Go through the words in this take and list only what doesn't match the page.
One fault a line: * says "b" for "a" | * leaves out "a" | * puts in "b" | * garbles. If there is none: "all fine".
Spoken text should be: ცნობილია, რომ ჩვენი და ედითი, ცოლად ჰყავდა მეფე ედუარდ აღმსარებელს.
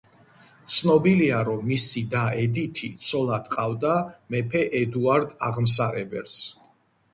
* says "მისი" for "ჩვენი"